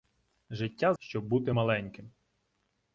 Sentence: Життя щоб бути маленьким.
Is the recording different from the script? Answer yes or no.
no